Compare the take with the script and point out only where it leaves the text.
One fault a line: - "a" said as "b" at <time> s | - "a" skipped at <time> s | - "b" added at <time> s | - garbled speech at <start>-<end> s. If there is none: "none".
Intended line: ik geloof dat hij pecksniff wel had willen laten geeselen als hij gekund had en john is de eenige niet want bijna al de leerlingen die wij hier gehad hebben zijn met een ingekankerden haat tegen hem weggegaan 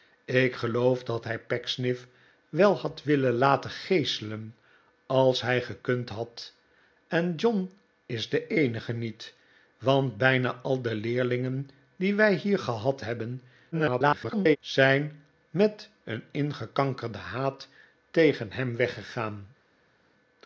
- garbled speech at 13.7-14.6 s